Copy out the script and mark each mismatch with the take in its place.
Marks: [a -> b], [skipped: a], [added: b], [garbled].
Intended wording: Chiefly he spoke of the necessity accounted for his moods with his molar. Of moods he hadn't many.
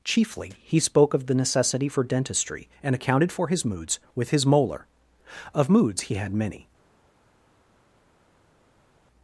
Chiefly he spoke of the necessity [added: for dentistry and] accounted for his moods with his molar. Of moods he [hadn't -> had] many.